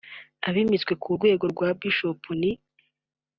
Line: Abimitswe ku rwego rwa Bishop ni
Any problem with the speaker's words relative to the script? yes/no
no